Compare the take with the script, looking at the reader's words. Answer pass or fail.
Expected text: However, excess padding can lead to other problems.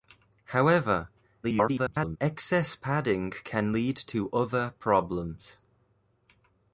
fail